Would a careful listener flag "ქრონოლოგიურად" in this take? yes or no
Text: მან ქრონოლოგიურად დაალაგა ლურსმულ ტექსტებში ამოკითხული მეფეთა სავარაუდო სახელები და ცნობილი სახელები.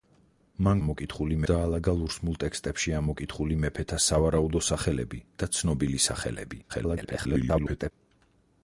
yes